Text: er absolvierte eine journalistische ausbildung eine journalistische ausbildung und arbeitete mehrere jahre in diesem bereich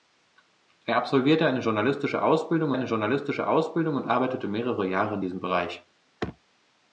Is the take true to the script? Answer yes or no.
yes